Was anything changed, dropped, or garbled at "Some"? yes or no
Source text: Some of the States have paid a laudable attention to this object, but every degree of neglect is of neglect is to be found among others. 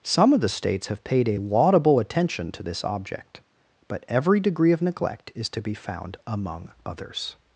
no